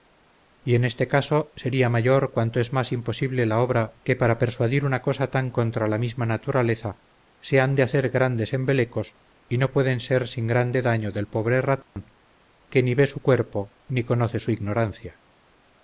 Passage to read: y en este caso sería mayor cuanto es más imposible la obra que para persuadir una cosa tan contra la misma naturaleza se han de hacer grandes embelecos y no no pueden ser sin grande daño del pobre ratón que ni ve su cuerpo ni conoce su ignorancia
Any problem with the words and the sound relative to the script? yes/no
yes